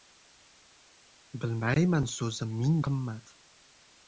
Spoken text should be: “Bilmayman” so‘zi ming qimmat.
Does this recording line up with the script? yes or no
yes